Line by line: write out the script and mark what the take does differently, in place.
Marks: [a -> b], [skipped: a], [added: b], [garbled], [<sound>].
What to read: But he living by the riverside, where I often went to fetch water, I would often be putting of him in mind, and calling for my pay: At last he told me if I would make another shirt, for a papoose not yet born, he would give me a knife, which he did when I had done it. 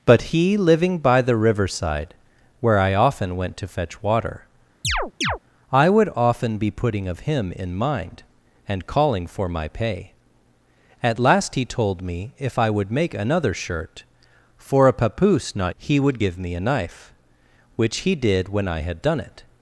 But he living by the riverside, where I often went to fetch water, [chirp] I would often be putting of him in mind, and calling for my pay: At last he told me if I would make another shirt, for a papoose not [skipped: yet born,] he would give me a knife, which he did when I had done it.